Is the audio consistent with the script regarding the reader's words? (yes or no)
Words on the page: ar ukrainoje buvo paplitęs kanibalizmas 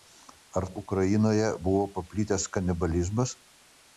yes